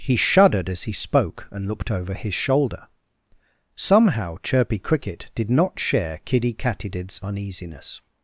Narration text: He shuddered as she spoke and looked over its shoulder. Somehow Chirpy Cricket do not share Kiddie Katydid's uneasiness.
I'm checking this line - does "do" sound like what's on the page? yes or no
no